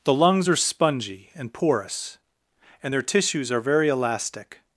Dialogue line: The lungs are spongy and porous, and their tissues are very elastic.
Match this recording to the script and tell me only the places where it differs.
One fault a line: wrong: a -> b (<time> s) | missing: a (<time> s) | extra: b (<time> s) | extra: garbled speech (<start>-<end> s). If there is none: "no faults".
no faults